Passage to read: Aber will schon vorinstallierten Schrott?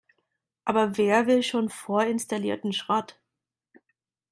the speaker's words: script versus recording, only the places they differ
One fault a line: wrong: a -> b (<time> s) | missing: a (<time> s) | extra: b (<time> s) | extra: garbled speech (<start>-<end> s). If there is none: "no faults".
extra: wer (1.0 s)